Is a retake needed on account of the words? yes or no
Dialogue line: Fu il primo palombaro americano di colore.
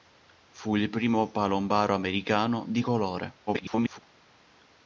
yes